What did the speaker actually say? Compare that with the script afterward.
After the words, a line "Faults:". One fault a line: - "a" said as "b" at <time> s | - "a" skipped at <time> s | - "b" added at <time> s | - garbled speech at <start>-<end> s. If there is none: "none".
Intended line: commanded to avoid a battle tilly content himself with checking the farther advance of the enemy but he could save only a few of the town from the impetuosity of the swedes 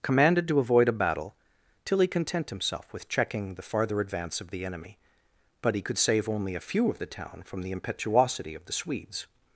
commanded to avoid a battle tilly content himself with checking the farther advance of the enemy but he could save only a few of the town from the impetuosity of the swedes
Faults:
none